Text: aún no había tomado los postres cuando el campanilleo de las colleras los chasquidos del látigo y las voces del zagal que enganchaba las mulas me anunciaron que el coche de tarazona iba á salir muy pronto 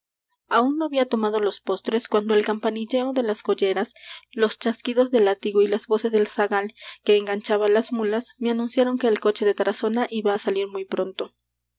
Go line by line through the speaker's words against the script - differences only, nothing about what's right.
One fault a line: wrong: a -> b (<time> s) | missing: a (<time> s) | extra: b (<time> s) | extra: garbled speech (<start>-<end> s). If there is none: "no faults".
no faults